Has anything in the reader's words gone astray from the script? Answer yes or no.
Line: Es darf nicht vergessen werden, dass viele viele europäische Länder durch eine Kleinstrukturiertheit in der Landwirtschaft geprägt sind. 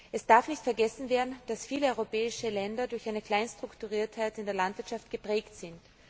yes